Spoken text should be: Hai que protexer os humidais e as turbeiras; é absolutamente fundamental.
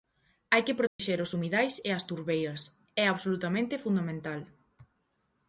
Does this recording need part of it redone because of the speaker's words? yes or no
no